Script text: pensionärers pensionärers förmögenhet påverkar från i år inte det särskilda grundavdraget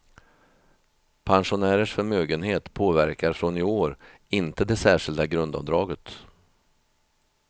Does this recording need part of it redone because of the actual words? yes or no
yes